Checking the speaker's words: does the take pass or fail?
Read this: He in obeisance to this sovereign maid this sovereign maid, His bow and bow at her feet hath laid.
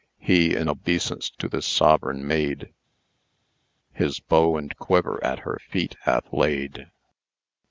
fail